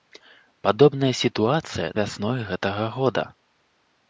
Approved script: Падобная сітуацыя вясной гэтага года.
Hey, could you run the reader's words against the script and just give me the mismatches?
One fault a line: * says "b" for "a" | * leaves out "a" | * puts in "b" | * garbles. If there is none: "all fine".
all fine